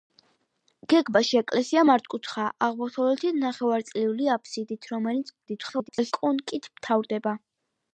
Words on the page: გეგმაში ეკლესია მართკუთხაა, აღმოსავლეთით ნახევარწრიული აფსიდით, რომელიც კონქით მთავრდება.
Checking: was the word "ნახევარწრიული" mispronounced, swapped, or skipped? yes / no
no